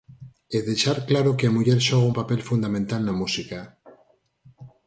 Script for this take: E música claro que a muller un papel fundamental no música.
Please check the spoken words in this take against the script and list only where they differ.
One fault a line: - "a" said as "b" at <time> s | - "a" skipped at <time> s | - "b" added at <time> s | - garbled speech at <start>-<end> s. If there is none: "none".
- "música" said as "deixar" at 0.7 s
- "xoga" added at 1.9 s
- "no" said as "na" at 3.0 s